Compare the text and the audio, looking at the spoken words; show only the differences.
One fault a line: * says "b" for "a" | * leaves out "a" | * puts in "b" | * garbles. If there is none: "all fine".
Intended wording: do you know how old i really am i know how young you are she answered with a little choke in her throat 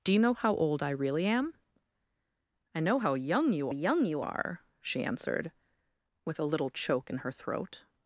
* puts in "young you"